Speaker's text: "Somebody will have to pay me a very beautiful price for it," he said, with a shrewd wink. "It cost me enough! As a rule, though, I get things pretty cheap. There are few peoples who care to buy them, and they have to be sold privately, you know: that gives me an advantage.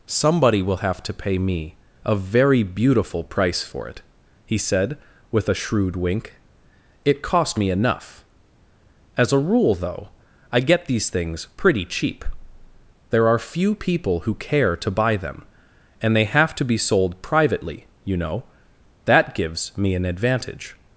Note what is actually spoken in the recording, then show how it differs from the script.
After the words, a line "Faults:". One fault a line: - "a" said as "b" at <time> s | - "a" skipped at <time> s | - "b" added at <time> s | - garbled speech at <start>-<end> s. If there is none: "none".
"Somebody will have to pay me a very beautiful price for it," he said, with a shrewd wink. "It cost me enough! As a rule, though, I get these things pretty cheap. There are few people who care to buy them, and they have to be sold privately, you know: that gives me an advantage.
Faults:
- "these" added at 10.8 s
- "peoples" said as "people" at 13.8 s